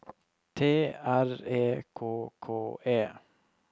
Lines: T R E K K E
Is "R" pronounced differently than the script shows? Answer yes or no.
no